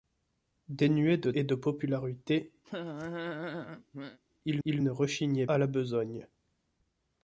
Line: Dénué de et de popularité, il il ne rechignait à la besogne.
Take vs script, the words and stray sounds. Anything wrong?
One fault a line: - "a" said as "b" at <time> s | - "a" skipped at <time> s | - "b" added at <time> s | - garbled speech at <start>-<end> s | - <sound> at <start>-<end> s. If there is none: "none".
- laugh at 2.6-4.2 s